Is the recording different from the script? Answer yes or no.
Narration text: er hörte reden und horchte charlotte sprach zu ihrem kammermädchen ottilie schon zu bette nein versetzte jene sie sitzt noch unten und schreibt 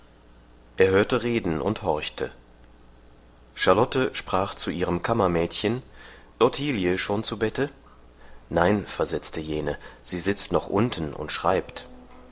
no